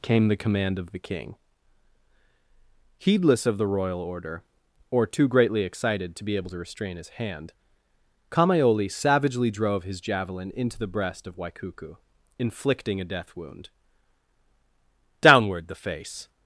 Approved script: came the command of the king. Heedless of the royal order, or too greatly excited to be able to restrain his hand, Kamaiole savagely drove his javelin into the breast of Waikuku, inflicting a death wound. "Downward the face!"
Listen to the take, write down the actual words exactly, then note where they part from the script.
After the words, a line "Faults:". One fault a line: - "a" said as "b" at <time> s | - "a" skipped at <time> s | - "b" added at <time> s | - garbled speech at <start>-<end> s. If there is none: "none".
came the command of the king. Heedless of the royal order, or too greatly excited to be able to restrain his hand, Kamaiole savagely drove his javelin into the breast of Waikuku, inflicting a death wound. "Downward the face!"
Faults:
none